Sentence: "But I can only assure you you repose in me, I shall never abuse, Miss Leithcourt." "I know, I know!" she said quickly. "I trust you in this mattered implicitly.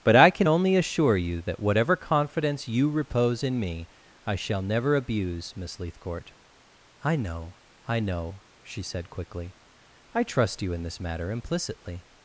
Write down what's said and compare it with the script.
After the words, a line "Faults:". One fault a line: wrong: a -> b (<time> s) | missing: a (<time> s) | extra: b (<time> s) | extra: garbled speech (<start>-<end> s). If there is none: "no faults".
"But I can only assure you that whatever confidence you repose in me, I shall never abuse, Miss Leithcourt." "I know, I know!" she said quickly. "I trust you in this matter implicitly.
Faults:
extra: that whatever confidence (1.4 s)
wrong: mattered -> matter (11.0 s)